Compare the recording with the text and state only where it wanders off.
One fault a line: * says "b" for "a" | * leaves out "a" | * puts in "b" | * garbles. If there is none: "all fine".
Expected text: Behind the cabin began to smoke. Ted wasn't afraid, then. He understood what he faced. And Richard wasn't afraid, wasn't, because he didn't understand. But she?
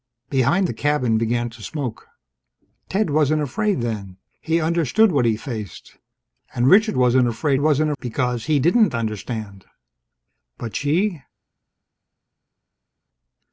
all fine